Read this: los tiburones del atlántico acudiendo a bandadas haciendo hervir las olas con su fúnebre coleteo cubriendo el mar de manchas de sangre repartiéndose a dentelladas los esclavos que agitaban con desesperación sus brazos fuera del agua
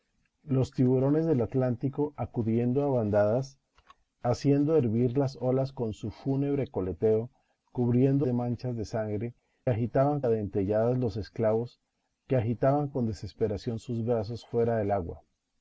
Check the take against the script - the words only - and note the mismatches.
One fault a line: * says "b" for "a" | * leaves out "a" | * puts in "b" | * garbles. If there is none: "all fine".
* leaves out "el mar"
* says "agitaban" for "repartiéndose"